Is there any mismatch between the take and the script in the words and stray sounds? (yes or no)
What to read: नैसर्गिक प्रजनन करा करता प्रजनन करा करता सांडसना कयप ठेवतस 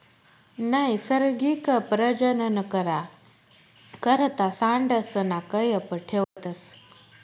yes